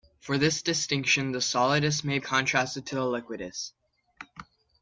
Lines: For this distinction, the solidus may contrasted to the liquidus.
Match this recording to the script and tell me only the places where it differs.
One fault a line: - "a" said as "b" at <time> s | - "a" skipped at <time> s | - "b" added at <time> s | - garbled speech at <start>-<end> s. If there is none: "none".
none